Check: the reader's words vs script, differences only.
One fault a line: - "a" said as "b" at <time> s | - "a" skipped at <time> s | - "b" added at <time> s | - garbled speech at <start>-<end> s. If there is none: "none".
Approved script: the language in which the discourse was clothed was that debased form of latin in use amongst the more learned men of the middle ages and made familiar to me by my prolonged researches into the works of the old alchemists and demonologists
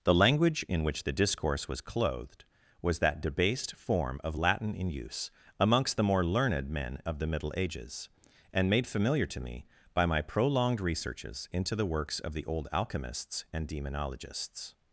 none